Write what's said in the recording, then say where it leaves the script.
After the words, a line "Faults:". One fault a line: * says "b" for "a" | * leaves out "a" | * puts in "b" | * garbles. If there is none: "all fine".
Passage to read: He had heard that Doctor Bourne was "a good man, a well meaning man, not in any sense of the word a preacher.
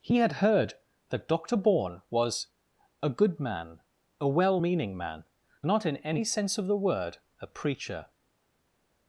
He had heard that Doctor Bourne was "a good man, a well meaning man, not in any sense of the word a preacher.
Faults:
all fine